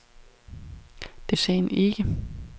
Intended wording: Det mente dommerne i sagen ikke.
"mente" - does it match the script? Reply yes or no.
no